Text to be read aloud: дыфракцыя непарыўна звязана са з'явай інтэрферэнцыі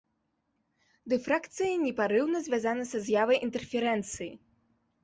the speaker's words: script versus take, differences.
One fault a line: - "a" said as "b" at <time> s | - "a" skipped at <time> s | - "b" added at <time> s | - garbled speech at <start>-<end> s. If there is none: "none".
none